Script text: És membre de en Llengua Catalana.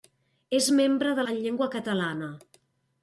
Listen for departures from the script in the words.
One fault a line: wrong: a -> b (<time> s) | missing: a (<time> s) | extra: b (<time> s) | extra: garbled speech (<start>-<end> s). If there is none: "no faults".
no faults